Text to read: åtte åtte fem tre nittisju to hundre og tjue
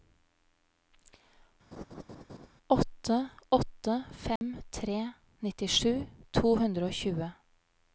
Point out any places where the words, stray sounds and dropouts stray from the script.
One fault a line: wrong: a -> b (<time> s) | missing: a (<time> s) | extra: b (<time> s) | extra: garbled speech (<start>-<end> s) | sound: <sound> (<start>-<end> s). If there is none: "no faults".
sound: laugh (1.7-2.5 s)
sound: dropout (4.4-4.4 s)